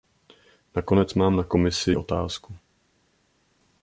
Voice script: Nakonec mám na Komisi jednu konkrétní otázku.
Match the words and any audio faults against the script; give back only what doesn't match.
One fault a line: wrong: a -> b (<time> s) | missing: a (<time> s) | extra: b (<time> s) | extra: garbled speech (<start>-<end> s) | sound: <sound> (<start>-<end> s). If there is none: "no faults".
missing: jednu konkrétní (1.9 s)